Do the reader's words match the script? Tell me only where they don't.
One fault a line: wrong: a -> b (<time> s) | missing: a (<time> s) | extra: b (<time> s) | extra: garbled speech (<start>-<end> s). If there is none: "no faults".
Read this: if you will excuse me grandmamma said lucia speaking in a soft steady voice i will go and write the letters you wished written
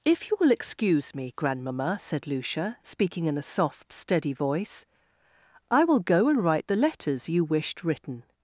no faults